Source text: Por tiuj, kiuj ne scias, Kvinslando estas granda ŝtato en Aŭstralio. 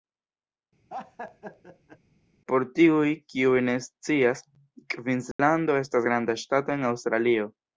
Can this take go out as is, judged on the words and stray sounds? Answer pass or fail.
fail